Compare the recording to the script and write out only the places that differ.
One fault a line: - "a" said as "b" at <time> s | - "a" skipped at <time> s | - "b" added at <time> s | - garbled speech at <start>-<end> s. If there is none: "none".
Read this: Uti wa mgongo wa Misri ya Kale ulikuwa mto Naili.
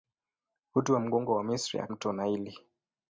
- "Kale ulikuwa" skipped at 1.9 s